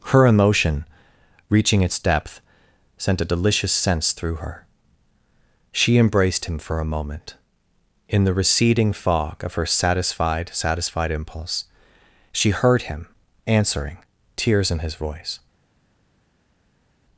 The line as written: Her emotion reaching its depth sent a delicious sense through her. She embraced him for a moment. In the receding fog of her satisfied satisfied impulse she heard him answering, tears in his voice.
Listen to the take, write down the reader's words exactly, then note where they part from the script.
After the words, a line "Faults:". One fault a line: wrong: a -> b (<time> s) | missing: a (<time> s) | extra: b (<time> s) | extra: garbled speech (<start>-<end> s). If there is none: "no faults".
Her emotion reaching its depth sent a delicious sense through her. She embraced him for a moment. In the receding fog of her satisfied satisfied impulse she heard him answering, tears in his voice.
Faults:
no faults